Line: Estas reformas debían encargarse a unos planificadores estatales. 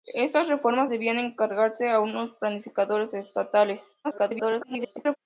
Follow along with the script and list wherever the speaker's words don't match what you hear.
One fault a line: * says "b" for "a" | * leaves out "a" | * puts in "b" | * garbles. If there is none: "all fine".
* garbles